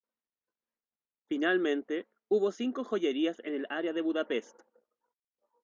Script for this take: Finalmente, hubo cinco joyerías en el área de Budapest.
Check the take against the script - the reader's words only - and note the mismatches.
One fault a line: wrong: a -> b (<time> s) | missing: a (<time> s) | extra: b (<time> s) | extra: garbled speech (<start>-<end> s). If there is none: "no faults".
no faults